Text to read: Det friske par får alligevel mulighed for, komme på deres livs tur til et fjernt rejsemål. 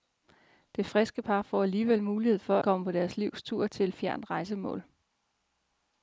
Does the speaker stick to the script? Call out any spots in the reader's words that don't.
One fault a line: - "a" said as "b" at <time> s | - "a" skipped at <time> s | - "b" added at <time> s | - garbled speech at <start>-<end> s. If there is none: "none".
none